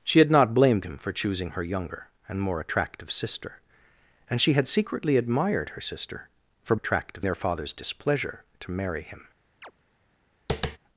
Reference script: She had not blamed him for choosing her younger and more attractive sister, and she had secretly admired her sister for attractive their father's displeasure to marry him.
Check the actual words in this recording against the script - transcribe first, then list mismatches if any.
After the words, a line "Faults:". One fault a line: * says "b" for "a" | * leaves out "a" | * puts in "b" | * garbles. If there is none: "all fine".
She had not blamed him for choosing her younger and more attractive sister, and she had secretly admired her sister for attractive their father's displeasure to marry him.
Faults:
all fine